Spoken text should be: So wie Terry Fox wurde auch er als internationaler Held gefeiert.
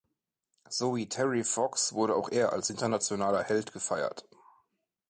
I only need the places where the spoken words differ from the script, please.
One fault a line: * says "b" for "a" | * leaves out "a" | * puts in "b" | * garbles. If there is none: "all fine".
all fine